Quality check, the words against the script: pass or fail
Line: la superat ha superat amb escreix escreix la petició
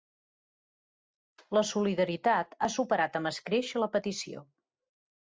fail